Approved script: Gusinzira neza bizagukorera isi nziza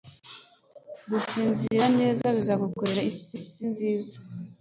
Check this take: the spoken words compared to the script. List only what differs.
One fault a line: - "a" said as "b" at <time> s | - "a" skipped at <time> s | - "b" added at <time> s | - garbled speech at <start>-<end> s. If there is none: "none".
- "isi" added at 3.4 s